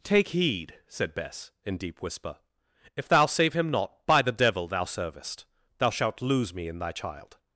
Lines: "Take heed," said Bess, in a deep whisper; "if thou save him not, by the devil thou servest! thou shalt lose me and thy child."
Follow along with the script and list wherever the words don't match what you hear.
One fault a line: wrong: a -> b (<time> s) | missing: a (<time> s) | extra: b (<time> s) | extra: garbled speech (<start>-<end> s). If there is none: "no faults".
missing: a (1.8 s)
wrong: and -> in (6.7 s)